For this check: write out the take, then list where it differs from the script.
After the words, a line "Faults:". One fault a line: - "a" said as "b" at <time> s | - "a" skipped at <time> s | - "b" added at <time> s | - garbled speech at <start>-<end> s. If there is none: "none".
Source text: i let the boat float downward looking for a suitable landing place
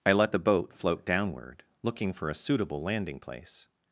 i let the boat float downward looking for a suitable landing place
Faults:
none